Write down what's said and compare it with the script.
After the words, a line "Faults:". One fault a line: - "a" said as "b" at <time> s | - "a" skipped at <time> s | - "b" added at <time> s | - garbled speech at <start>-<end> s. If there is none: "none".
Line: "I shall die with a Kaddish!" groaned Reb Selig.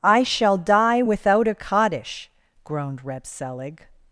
"I shall die without a Kaddish!" groaned Reb Selig.
Faults:
- "with" said as "without" at 1.0 s